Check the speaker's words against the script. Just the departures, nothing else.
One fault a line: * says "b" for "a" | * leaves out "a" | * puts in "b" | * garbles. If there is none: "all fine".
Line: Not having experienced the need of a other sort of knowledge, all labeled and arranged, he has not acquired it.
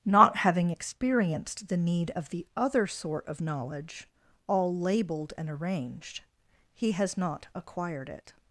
* says "the" for "a"